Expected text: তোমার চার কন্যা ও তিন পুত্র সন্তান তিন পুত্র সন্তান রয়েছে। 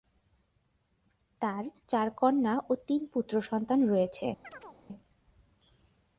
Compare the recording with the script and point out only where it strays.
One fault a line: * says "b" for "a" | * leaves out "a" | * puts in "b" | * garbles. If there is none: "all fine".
* says "তার" for "তোমার"
* leaves out "তিন পুত্র সন্তান"